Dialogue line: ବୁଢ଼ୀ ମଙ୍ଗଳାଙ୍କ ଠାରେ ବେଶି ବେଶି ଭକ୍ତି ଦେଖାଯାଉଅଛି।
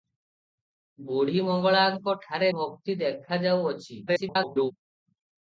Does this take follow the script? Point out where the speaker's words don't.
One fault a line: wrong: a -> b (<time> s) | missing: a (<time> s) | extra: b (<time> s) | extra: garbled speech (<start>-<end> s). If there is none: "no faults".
missing: ବେଶି ବେଶି (2.5 s)
extra: garbled speech (4.1-4.7 s)